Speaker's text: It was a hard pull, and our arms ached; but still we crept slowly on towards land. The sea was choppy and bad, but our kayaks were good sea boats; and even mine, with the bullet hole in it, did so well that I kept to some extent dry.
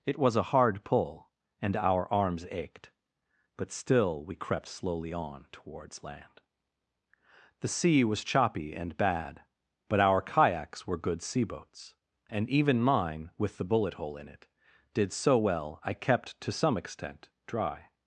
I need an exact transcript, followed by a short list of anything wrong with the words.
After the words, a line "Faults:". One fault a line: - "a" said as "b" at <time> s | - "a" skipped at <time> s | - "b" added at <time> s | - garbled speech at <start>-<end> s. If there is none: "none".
It was a hard pull, and our arms ached; but still we crept slowly on towards land. The sea was choppy and bad, but our kayaks were good sea boats; and even mine, with the bullet hole in it, did so well I kept to some extent dry.
Faults:
- "that" skipped at 15.8 s